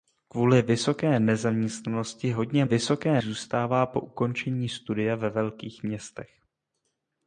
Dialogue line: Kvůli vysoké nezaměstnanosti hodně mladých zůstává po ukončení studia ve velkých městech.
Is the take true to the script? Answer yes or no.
no